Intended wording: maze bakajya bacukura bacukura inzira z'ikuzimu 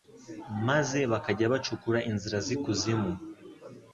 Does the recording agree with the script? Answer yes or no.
no